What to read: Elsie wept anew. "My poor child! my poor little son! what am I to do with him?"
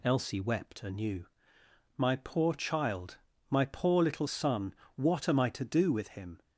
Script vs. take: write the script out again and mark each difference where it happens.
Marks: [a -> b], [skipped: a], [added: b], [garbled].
Elsie wept anew. "My poor child! my poor little son! what am I to do with him?"